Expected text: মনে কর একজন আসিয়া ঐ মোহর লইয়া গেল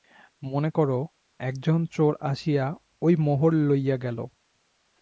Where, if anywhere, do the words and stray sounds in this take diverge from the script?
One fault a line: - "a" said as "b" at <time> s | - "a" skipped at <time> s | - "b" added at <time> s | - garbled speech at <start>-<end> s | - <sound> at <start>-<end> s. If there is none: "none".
- "চোর" added at 1.8 s